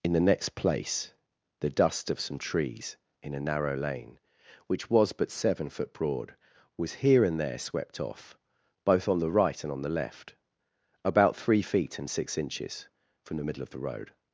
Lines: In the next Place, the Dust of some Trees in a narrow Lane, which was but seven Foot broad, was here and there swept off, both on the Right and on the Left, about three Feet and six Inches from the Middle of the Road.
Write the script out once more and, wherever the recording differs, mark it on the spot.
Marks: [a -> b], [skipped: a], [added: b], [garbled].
In the next Place, the Dust of some Trees in a narrow Lane, which was but seven Foot broad, was here and there swept off, both on the Right and on the Left, about three Feet and six Inches from the Middle of the Road.